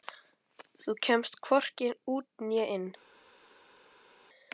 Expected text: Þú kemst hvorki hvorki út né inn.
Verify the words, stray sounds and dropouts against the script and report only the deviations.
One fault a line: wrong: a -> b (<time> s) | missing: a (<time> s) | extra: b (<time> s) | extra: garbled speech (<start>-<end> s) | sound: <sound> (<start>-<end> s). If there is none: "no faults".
missing: hvorki (1.9 s)